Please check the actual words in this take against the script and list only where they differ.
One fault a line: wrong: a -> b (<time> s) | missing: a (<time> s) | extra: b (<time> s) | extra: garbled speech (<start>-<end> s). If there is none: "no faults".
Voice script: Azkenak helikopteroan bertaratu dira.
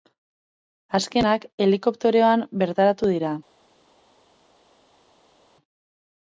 no faults